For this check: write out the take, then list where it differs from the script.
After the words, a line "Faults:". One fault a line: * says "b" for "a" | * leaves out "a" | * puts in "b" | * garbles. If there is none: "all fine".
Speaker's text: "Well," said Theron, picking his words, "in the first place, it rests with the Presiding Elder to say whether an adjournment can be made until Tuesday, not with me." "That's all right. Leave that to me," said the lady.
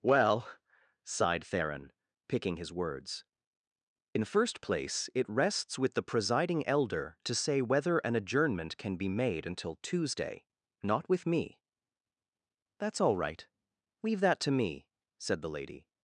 "Well," sighed Theron, picking his words, "in first place, it rests with the Presiding Elder to say whether an adjournment can be made until Tuesday, not with me." "That's all right. Leave that to me," said the lady.
Faults:
* says "sighed" for "said"
* leaves out "the"